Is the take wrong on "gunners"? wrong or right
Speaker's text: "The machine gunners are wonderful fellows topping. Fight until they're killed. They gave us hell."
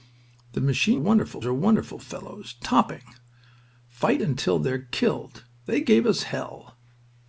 wrong